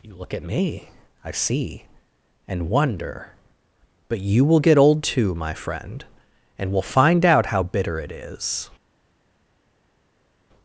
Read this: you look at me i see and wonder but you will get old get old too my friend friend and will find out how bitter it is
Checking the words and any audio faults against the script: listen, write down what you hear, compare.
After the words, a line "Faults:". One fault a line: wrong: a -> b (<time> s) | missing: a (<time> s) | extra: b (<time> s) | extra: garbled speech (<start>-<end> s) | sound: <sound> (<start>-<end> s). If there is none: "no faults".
you look at me i see and wonder but you will get old too my friend and will find out how bitter it is
Faults:
missing: get old (5.0 s)
missing: friend (6.0 s)